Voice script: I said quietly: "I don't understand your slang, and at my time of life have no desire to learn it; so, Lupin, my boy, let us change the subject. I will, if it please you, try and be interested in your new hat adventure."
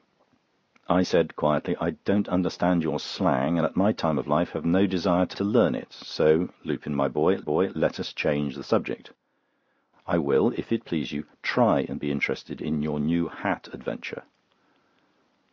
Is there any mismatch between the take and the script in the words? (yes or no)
yes